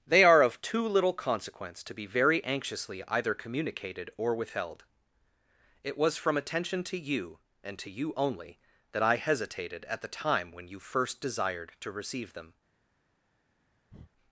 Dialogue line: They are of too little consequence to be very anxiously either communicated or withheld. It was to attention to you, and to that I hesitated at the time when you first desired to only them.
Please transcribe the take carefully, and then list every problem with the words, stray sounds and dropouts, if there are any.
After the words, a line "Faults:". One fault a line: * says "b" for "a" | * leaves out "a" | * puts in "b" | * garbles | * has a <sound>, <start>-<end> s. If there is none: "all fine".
They are of too little consequence to be very anxiously either communicated or withheld. It was from attention to you, and to you only, that I hesitated at the time when you first desired to receive them.
Faults:
* says "from" for "to"
* puts in "you only"
* says "receive" for "only"
* has a breath, 13.9-14.1 s